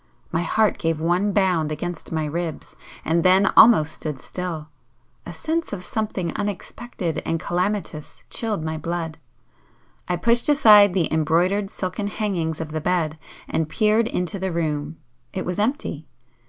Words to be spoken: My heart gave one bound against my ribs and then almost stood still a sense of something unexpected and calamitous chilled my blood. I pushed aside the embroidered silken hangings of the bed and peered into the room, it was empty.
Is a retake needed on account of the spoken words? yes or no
no